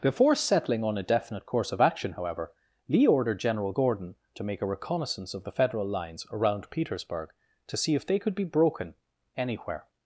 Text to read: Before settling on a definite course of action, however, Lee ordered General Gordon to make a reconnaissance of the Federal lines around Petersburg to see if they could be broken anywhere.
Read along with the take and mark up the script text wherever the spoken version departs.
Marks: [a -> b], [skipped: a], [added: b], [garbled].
Before settling on a definite course of action, however, Lee ordered General Gordon to make a reconnaissance of the Federal lines around Petersburg to see if they could be broken anywhere.